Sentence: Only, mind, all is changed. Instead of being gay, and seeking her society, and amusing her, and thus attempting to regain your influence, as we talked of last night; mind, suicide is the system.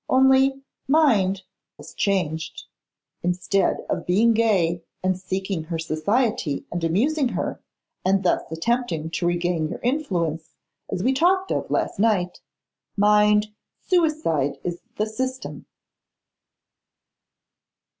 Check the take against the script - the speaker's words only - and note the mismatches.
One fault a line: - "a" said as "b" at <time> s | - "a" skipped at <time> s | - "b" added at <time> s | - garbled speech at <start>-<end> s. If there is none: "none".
- "all" skipped at 1.4 s